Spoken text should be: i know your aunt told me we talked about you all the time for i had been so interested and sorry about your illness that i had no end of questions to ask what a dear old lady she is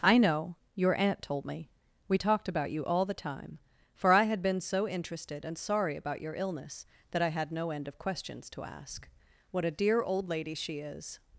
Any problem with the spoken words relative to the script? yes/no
no